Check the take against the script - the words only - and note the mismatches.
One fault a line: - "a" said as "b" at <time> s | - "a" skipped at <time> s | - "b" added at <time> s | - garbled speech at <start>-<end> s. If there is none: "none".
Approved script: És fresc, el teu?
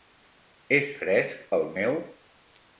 - "teu" said as "meu" at 1.8 s